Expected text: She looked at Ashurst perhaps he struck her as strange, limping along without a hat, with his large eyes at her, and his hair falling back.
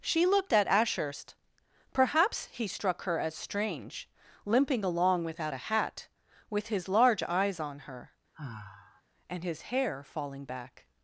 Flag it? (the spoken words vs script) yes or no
yes